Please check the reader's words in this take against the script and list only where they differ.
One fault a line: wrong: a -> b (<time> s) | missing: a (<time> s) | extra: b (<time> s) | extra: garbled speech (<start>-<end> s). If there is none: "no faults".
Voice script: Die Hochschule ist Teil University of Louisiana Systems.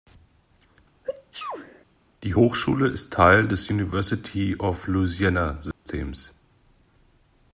extra: des (3.5 s)